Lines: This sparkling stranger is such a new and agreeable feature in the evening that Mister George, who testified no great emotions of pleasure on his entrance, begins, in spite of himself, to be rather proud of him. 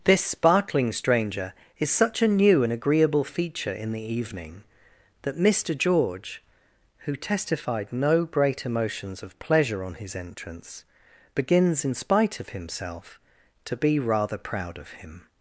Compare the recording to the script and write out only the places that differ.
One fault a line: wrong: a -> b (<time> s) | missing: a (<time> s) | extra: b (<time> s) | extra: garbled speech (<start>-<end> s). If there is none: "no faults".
no faults